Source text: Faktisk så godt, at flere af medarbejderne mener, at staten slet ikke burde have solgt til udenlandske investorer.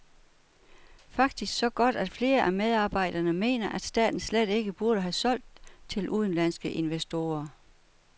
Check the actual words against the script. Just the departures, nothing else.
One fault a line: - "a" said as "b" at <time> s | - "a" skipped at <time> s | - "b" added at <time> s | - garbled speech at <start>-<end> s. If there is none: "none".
none